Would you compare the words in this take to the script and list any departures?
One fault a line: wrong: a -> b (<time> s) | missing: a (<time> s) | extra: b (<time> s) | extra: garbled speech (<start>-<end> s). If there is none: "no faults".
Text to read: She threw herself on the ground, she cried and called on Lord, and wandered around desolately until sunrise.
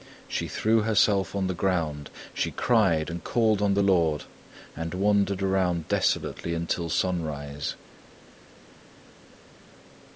extra: the (3.7 s)